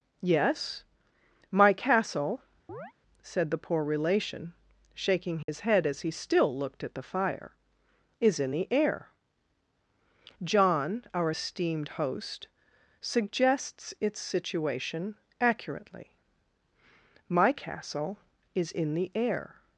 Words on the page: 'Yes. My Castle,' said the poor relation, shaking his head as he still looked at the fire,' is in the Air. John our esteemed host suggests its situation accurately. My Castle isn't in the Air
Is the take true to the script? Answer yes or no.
no